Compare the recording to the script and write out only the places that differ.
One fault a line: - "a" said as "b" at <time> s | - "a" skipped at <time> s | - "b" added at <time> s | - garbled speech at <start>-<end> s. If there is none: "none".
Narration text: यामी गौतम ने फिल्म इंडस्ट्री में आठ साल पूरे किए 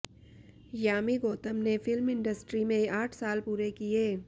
none